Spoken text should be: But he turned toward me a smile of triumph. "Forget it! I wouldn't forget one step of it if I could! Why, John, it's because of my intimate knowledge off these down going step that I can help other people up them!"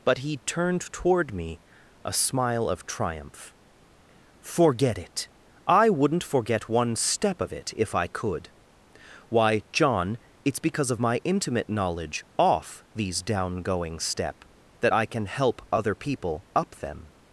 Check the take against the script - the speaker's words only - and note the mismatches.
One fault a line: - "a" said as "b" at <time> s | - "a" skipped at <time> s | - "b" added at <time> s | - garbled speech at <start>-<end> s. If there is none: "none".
none